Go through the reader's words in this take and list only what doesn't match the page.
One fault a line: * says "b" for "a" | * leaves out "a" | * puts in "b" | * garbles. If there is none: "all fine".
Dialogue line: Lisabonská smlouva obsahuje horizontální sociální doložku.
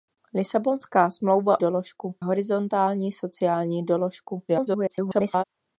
* says "doložku" for "obsahuje"
* garbles